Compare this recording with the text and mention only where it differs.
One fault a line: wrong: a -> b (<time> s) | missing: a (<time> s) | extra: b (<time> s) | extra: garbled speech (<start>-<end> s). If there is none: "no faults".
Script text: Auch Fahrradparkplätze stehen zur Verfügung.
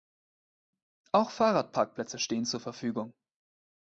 no faults